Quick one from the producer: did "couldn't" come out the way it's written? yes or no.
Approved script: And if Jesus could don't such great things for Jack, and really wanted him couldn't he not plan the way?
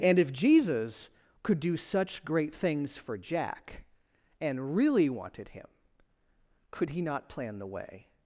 no